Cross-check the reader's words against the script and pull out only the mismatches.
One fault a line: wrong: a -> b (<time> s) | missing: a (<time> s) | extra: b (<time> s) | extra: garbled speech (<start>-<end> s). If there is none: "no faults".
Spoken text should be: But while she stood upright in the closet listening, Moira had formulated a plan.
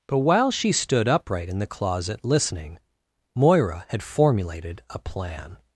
no faults